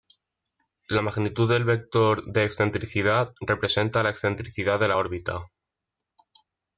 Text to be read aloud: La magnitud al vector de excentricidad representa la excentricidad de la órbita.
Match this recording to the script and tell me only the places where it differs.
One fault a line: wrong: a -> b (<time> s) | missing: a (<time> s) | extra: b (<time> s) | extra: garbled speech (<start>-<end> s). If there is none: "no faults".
wrong: al -> del (1.5 s)